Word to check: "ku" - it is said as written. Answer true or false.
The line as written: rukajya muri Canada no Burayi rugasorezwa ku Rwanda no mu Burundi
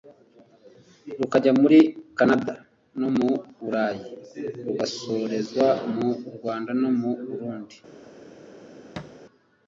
false